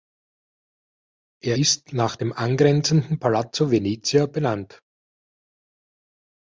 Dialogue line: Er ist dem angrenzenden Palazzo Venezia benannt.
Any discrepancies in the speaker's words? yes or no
yes